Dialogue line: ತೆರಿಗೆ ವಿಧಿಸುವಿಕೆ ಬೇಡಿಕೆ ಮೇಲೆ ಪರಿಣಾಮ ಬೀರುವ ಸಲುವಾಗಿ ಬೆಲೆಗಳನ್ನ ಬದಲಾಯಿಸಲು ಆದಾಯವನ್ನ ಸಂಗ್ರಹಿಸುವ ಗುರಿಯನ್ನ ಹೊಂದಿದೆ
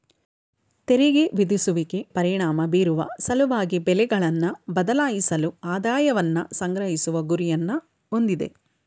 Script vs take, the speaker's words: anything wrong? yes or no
yes